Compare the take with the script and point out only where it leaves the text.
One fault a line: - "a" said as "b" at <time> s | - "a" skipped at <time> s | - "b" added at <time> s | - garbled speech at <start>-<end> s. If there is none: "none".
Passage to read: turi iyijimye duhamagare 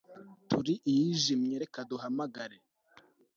- "reka" added at 1.6 s